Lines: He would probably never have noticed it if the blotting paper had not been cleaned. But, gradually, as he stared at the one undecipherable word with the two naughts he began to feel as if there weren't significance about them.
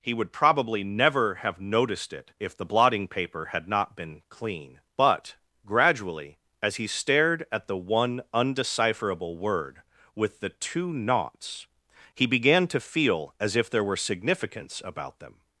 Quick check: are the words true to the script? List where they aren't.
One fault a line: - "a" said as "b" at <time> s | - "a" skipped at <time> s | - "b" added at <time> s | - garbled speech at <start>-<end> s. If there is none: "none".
- "cleaned" said as "clean" at 4.3 s
- "weren't" said as "were" at 13.8 s